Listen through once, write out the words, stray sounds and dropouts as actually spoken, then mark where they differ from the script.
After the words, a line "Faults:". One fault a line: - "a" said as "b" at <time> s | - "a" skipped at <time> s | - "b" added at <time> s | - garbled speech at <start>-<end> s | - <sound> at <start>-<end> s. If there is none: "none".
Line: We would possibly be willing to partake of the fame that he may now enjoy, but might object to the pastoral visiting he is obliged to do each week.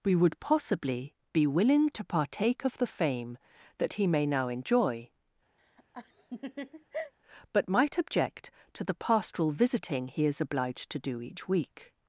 We would possibly be willing to partake of the fame that he may now enjoy, but might object to the pastoral visiting he is obliged to do each week.
Faults:
- laugh at 5.6-7.1 s